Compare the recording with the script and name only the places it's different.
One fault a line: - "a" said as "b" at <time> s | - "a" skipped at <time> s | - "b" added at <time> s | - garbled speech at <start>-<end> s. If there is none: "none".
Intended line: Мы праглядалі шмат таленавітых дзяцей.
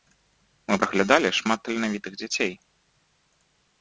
none